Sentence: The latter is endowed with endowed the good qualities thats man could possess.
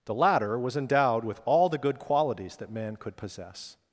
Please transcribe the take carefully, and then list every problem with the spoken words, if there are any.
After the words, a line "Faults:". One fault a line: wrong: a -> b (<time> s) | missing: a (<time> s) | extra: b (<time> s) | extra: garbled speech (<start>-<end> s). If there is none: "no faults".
The latter was endowed with all the good qualities that man could possess.
Faults:
wrong: is -> was (0.6 s)
wrong: endowed -> all (1.4 s)
wrong: thats -> that (2.6 s)